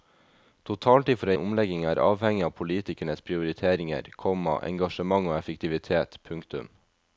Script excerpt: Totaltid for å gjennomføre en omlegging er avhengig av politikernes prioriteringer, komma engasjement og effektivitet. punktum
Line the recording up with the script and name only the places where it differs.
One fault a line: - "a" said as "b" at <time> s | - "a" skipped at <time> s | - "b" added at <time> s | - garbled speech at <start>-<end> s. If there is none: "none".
- "gjennomføre" skipped at 1.4 s